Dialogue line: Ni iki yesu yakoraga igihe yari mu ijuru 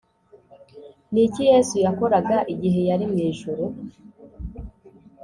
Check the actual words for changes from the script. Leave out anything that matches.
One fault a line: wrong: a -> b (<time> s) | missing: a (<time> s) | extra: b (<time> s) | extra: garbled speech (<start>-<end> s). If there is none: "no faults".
no faults